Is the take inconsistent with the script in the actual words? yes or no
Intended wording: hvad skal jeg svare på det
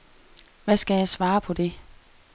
no